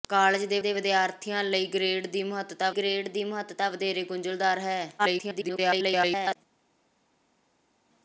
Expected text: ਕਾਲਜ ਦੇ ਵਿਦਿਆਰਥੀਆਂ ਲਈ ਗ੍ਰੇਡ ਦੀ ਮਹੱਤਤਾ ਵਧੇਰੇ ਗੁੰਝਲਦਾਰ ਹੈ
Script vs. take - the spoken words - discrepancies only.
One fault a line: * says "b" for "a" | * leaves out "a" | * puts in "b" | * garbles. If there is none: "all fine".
* puts in "ਦੇ"
* puts in "ਗ੍ਰੇਡ ਦੀ ਮਹੱਤਤਾ"
* garbles